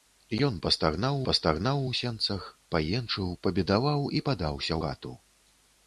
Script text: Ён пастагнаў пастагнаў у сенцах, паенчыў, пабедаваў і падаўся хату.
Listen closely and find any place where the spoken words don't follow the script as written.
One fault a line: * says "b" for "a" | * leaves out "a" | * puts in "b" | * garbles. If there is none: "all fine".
all fine